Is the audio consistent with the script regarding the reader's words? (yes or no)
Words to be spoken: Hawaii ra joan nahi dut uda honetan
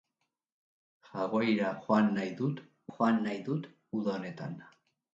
no